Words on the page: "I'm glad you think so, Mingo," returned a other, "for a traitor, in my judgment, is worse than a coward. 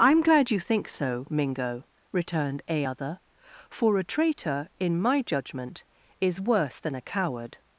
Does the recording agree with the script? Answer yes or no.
yes